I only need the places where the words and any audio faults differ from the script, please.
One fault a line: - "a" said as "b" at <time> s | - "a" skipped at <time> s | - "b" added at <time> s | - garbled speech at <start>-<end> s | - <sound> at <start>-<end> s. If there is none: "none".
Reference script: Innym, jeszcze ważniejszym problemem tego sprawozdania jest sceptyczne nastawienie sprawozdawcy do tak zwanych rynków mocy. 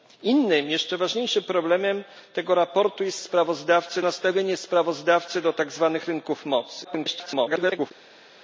- "sceptyczne" said as "sprawozdawcy" at 3.2 s
- garbled speech at 6.8-7.9 s